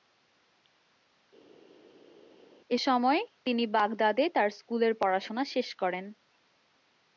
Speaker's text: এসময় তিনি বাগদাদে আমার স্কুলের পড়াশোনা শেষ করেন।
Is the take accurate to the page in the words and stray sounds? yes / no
no